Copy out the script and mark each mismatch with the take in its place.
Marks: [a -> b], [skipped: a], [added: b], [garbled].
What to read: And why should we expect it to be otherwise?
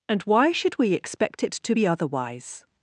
And why should we expect it to be otherwise?